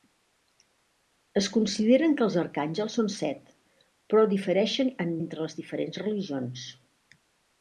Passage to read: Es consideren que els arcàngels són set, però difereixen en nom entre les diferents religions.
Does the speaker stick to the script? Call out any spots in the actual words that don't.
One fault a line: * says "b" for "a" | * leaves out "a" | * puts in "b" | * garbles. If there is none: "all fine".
* leaves out "nom"